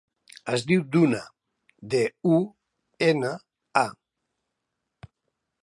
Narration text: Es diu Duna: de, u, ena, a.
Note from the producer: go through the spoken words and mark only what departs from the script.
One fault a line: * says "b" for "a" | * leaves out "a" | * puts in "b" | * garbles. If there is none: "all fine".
all fine